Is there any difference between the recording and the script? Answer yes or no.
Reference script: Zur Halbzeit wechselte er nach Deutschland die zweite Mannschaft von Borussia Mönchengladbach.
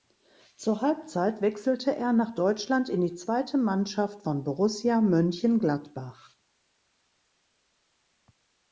yes